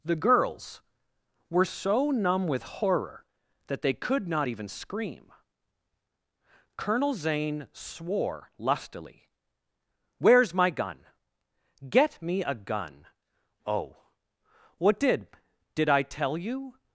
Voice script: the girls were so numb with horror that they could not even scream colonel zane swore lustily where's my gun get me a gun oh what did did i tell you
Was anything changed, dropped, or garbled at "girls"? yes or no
no